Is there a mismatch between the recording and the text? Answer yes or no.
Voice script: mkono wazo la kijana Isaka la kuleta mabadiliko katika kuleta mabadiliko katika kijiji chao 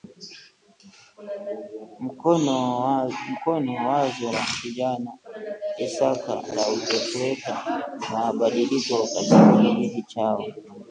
yes